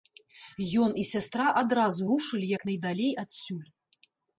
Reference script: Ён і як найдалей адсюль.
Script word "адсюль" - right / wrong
right